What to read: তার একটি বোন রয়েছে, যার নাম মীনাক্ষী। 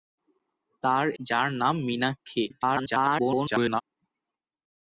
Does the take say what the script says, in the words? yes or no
no